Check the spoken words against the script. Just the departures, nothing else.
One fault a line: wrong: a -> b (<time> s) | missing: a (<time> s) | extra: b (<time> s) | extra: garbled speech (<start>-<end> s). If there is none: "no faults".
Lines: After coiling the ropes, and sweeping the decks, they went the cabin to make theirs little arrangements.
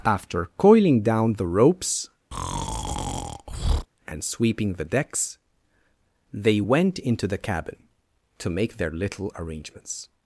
extra: down (1.0 s)
extra: into (7.0 s)
wrong: theirs -> their (8.8 s)